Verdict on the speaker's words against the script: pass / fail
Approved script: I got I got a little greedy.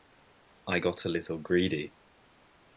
fail